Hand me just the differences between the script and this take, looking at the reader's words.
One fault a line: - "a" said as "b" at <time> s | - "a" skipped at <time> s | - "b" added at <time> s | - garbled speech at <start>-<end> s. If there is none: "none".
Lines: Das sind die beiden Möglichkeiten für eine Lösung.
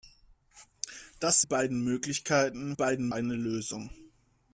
- "sind" skipped at 1.4 s
- "für" said as "beiden" at 2.7 s